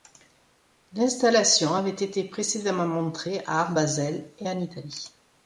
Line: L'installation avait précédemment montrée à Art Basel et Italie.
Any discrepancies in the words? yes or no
yes